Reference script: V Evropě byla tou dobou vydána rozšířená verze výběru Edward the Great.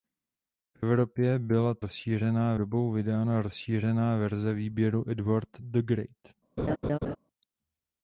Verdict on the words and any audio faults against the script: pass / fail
fail